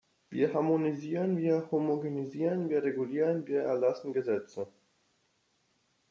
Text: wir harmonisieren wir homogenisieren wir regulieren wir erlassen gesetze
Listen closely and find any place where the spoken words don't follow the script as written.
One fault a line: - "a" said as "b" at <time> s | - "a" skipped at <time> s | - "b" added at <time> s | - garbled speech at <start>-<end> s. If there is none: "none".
none